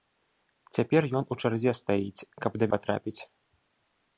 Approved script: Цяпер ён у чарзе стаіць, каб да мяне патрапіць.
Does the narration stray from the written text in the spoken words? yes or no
yes